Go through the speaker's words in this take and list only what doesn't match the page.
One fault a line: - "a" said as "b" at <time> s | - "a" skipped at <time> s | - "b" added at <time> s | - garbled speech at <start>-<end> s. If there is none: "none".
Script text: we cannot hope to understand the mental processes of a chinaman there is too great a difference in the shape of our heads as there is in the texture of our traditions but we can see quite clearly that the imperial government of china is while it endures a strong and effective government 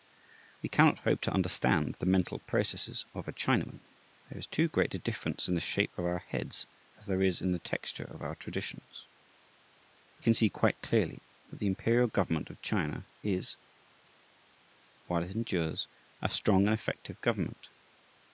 - "we" skipped at 10.2 s